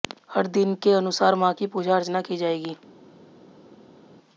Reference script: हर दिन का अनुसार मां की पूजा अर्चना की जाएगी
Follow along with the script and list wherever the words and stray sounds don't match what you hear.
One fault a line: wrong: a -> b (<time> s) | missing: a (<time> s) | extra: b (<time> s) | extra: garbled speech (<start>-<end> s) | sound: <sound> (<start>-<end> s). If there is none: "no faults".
wrong: का -> के (0.8 s)